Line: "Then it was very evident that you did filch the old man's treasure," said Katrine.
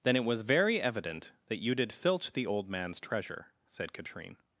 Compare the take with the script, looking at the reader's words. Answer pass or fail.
pass